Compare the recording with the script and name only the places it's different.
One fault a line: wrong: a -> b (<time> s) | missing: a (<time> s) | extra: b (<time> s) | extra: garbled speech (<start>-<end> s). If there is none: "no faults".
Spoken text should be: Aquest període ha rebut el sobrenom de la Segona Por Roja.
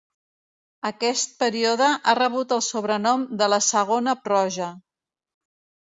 missing: Por (4.1 s)